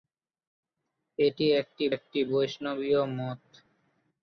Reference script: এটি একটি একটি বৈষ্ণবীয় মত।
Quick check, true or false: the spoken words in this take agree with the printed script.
true